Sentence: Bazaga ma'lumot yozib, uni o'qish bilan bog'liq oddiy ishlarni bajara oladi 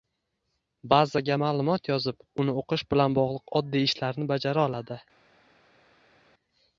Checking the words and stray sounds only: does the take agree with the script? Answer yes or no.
yes